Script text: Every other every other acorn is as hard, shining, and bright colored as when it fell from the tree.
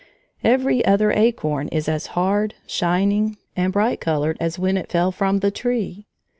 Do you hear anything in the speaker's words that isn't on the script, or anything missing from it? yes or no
yes